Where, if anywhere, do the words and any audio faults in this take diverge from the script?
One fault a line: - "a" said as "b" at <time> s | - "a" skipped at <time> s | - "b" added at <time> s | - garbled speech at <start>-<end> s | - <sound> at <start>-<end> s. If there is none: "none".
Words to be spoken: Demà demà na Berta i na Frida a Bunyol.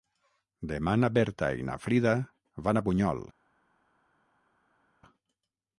- "demà" skipped at 0.9 s
- "van" added at 2.7 s